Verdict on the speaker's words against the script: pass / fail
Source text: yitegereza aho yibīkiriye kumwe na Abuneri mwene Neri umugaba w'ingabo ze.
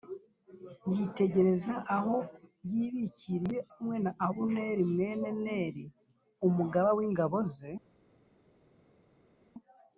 pass